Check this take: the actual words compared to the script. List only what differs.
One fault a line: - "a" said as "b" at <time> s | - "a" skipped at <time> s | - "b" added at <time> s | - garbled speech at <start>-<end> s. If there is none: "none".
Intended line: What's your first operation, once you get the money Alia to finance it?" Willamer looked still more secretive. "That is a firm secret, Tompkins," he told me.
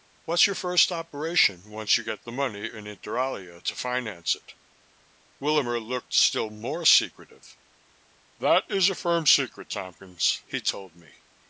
- "in Inter" added at 2.7 s